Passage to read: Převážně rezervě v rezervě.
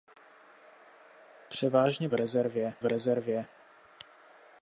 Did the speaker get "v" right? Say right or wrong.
right